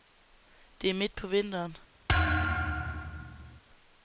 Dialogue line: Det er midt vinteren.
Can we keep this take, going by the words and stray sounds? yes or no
no